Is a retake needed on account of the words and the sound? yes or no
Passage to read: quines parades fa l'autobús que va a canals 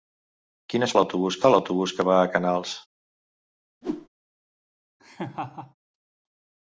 yes